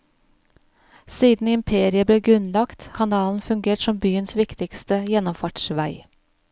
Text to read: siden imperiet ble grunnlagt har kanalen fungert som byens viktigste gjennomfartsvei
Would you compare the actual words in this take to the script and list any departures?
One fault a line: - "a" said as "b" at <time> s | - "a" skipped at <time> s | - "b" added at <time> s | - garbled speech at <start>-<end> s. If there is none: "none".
- "har" skipped at 2.9 s